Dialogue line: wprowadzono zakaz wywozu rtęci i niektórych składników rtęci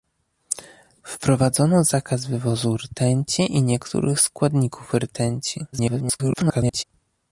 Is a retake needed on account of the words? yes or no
yes